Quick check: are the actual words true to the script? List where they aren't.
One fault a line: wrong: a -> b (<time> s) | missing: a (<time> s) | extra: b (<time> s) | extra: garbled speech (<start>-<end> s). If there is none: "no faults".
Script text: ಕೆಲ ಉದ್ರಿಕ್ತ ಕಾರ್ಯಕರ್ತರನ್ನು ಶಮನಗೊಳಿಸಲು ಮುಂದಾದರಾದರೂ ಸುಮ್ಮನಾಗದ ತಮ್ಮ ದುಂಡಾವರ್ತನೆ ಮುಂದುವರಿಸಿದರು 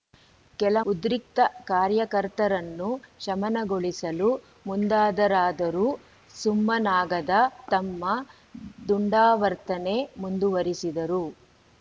no faults